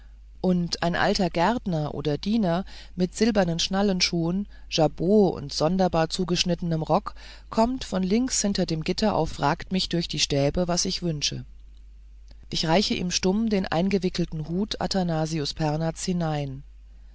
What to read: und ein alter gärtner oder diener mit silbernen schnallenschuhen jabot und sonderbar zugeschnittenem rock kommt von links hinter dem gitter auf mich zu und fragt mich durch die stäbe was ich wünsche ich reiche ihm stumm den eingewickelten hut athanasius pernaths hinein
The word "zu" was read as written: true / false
false